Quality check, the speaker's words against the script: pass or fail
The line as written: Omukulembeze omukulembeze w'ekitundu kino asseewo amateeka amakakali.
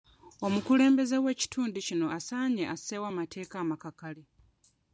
fail